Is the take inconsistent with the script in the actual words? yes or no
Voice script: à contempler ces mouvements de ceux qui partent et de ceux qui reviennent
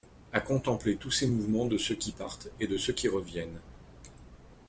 yes